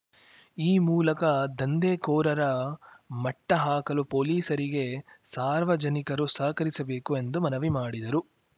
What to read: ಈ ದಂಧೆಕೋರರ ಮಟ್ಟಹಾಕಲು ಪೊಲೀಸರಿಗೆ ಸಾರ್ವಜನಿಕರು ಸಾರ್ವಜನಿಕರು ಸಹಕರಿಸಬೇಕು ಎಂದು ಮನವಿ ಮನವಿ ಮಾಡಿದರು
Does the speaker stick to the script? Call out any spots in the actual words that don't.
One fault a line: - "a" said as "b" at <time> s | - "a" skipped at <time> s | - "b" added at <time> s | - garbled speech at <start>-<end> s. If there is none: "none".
- "ಮೂಲಕ" added at 0.8 s
- "ಸಾರ್ವಜನಿಕರು" skipped at 6.3 s
- "ಮನವಿ" skipped at 7.7 s